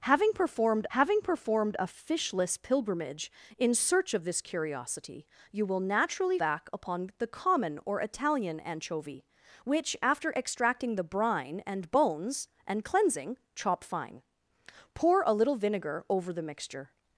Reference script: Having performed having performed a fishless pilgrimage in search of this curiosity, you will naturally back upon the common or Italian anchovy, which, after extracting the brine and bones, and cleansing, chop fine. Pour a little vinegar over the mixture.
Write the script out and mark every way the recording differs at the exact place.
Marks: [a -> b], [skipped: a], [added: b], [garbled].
Having performed having performed a fishless pilgrimage in search of this curiosity, you will naturally back upon the common or Italian anchovy, which, after extracting the brine and bones, and cleansing, chop fine. Pour a little vinegar over the mixture.